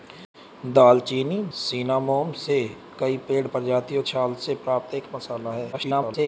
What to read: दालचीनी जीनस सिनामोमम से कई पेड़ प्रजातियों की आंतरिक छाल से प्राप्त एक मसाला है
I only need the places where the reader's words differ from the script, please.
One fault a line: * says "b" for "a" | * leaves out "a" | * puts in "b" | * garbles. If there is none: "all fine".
* leaves out "जीनस"
* leaves out "की आंतरिक"
* garbles